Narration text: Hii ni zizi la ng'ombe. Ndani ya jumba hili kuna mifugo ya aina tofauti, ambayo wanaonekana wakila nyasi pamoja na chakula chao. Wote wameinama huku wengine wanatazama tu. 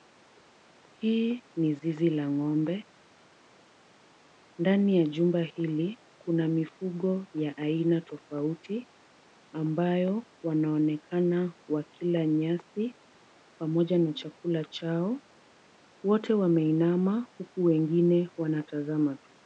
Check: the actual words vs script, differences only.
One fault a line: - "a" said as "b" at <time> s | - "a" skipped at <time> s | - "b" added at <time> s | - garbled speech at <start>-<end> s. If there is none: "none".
none